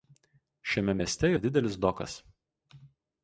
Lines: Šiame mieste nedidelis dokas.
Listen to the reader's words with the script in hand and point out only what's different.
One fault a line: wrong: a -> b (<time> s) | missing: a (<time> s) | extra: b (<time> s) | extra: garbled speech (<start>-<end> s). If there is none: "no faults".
no faults